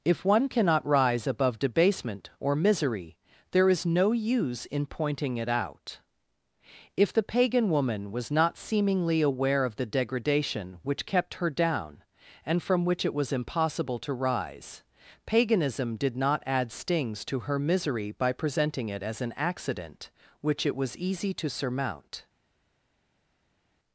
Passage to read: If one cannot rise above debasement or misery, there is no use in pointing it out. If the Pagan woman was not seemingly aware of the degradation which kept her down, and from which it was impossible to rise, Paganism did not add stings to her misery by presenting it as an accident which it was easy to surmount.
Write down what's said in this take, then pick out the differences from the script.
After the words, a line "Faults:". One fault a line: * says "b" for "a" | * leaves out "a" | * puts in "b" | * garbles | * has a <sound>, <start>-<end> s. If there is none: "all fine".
If one cannot rise above debasement or misery, there is no use in pointing it out. If the Pagan woman was not seemingly aware of the degradation which kept her down, and from which it was impossible to rise, Paganism did not add stings to her misery by presenting it as an accident which it was easy to surmount.
Faults:
all fine